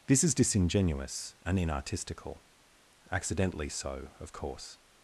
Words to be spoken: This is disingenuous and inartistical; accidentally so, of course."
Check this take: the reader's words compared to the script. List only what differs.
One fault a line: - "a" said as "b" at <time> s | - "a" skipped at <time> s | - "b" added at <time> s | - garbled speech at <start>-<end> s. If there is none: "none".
none